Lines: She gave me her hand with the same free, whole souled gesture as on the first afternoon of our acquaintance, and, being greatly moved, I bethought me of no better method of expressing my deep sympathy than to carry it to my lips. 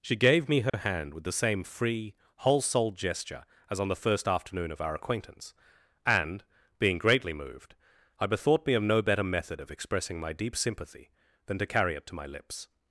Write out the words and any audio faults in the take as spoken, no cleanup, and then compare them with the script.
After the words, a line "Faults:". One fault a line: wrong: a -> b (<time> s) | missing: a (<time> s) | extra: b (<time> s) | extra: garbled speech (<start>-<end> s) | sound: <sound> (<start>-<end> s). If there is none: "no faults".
She gave me her hand with the same free, whole souled gesture as on the first afternoon of our acquaintance, and, being greatly moved, I bethought me of no better method of expressing my deep sympathy than to carry it to my lips.
Faults:
sound: dropout (0.7-0.7 s)